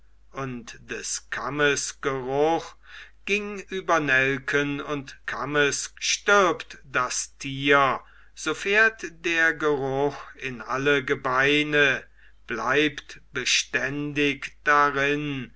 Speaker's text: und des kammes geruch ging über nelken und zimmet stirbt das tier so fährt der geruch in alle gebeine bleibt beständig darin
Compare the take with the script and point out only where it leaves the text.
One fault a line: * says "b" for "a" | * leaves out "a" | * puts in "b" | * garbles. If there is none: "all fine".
* says "kammes" for "zimmet"